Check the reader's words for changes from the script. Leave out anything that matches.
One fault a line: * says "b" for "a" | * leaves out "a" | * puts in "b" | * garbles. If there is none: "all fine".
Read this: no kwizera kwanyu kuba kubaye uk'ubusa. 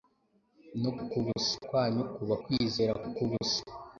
* says "uk'ubusa" for "kwizera"
* says "kwizera" for "kubaye"